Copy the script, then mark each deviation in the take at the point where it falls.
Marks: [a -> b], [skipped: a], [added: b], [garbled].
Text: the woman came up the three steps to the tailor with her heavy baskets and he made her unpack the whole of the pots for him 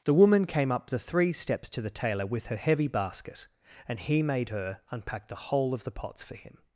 the woman came up the three steps to the tailor with her heavy [baskets -> basket] and he made her unpack the whole of the pots for him